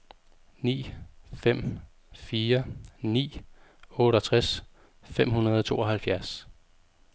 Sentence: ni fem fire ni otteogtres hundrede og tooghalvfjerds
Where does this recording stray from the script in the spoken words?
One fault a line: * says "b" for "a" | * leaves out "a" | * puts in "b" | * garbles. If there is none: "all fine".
* puts in "fem"